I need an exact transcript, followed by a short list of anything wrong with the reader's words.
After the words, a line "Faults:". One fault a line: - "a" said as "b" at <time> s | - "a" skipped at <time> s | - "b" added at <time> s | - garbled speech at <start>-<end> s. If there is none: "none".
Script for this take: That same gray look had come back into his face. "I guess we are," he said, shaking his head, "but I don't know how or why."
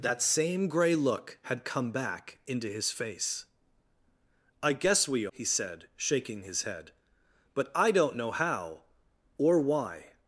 That same gray look had come back into his face. "I guess we," he said, shaking his head, "but I don't know how or why."
Faults:
- "are" skipped at 5.3 s